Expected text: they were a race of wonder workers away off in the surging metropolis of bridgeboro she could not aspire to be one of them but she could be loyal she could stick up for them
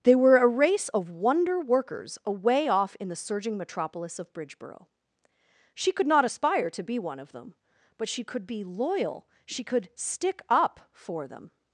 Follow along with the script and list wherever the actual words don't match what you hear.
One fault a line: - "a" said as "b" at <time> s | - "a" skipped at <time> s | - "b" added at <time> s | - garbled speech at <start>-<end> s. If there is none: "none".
none